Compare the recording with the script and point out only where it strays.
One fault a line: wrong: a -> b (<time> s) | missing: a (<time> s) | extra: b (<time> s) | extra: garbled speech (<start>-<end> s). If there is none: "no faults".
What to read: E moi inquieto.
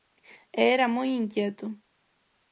extra: era (0.8 s)